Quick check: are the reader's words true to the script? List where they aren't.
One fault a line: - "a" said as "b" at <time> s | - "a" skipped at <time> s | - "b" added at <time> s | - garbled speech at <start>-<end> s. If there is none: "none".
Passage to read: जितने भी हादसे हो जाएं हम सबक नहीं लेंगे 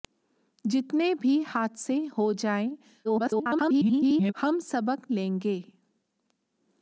- garbled speech at 3.0-4.3 s
- "नहीं" skipped at 5.1 s